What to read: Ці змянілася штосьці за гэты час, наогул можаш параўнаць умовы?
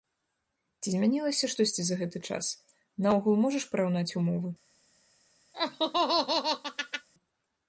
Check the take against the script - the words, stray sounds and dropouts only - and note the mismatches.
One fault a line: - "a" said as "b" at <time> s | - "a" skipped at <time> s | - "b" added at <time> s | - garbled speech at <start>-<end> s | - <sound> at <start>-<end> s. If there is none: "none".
- laugh at 5.5-7.1 s